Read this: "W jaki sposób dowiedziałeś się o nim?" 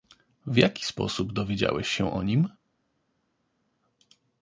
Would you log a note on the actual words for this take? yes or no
no